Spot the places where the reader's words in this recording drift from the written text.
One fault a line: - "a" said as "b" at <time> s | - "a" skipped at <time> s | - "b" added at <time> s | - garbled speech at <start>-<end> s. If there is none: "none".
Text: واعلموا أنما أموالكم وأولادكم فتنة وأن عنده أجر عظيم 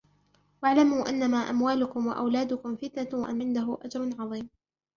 none